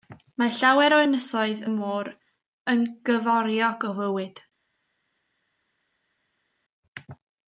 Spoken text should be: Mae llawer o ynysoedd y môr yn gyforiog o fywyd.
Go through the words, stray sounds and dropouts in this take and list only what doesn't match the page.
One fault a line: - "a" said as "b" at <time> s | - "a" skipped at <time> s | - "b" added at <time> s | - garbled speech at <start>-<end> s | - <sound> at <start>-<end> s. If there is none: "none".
none